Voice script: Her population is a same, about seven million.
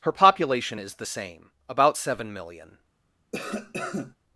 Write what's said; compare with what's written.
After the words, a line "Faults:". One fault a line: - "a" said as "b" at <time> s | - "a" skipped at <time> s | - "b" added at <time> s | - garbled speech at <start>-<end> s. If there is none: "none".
Her population is the same, about seven million.
Faults:
- "a" said as "the" at 0.9 s